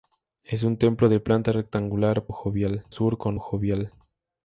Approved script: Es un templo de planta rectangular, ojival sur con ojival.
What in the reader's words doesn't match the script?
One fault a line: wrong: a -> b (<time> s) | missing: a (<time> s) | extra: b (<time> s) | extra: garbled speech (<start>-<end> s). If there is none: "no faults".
no faults